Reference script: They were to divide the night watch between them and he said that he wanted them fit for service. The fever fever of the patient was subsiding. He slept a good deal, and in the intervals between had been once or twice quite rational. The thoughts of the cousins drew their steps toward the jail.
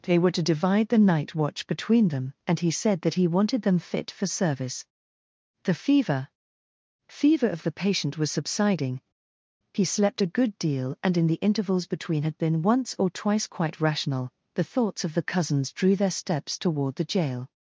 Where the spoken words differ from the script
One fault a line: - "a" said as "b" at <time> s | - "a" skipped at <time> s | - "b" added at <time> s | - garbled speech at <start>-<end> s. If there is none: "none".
none